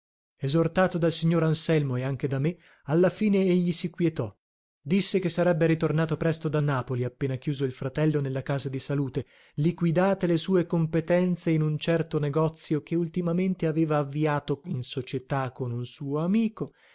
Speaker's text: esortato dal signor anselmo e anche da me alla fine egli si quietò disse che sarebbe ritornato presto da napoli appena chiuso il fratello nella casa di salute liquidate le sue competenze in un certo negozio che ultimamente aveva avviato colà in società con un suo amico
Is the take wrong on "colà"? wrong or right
wrong